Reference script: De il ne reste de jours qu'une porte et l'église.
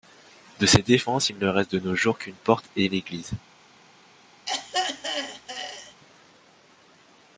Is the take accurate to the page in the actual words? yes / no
no